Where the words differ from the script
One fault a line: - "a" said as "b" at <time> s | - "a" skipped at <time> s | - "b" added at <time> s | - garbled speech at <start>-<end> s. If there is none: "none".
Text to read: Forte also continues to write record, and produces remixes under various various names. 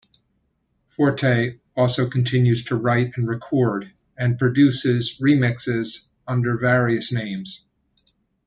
- "and" added at 3.2 s
- "various" skipped at 7.1 s